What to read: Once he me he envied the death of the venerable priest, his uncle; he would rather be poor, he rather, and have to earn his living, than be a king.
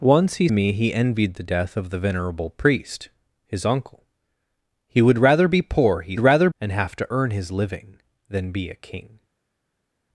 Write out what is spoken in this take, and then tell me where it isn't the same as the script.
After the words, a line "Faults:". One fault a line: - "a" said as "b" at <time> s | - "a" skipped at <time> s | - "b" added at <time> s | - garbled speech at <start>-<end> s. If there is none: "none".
Once he me he envied the death of the venerable priest, his uncle; he would rather be poor, he rather, and have to earn his living, than be a king.
Faults:
none